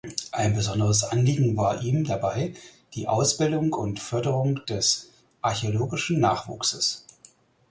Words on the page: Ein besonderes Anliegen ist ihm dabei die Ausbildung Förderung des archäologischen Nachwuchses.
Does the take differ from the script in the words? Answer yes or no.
yes